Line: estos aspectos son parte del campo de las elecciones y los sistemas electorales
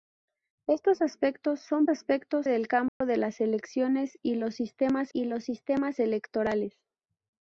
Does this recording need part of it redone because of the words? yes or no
yes